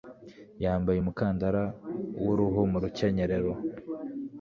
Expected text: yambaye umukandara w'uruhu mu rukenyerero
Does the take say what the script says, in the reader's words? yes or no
yes